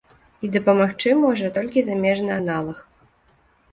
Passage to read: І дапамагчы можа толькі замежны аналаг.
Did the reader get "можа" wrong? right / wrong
right